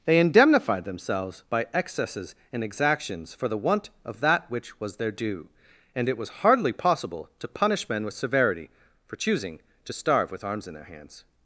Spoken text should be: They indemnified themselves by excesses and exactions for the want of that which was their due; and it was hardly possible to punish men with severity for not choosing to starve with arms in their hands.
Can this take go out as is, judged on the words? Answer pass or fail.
fail